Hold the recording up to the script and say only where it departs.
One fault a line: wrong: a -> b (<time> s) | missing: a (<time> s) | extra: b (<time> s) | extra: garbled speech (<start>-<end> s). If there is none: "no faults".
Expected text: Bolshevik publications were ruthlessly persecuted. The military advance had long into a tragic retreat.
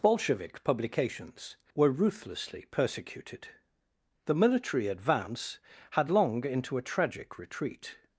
no faults